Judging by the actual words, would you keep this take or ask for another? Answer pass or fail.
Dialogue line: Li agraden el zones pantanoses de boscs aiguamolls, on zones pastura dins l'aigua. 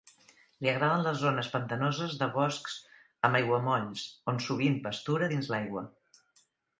fail